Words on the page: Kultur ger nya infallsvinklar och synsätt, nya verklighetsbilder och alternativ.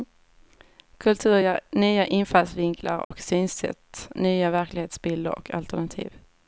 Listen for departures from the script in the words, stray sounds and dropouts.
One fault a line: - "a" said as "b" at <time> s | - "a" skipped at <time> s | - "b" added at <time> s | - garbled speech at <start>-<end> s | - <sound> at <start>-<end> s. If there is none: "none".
- dropout at 3.0-3.1 s